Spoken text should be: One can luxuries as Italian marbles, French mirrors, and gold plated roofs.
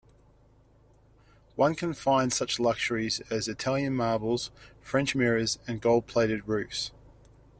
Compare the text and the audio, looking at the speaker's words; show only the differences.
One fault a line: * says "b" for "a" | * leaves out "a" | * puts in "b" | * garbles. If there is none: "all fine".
* puts in "find such"